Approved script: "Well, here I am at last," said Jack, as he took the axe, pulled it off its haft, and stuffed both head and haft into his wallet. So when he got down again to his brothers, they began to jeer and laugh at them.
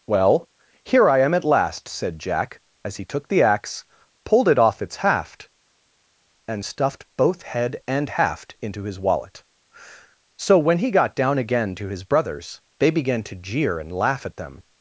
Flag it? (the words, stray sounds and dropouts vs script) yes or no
no